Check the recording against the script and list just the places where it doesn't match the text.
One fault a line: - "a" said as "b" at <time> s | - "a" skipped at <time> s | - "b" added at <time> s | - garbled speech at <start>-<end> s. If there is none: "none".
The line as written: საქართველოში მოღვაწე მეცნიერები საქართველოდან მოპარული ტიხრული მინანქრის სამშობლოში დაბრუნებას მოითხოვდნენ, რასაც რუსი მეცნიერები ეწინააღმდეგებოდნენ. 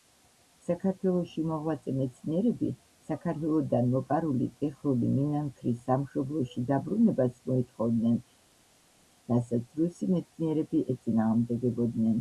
none